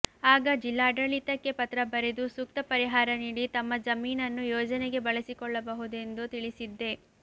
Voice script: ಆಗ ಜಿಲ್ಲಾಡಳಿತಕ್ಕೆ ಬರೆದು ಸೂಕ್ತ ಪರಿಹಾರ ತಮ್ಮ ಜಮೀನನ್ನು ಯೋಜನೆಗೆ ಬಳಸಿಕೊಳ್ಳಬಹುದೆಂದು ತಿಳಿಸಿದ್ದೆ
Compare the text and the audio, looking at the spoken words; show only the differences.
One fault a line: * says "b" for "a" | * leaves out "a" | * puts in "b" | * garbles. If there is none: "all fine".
* puts in "ಪತ್ರ"
* puts in "ನೀಡಿ"